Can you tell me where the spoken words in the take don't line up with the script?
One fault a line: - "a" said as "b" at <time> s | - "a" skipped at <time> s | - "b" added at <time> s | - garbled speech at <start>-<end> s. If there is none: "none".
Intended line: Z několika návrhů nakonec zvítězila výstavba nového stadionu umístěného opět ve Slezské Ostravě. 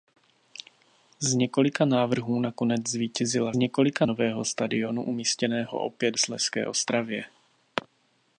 - "výstavba" said as "několika" at 3.5 s
- "ve" skipped at 6.2 s